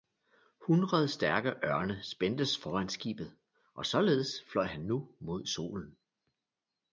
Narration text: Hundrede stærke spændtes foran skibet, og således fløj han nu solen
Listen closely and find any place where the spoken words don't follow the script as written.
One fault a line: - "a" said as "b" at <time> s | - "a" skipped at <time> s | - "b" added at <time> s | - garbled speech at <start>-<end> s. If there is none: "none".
- "ørne" added at 1.5 s
- "mod" added at 5.2 s